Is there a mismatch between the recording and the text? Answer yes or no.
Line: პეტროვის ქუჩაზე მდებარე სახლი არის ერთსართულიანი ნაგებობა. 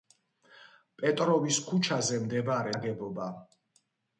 yes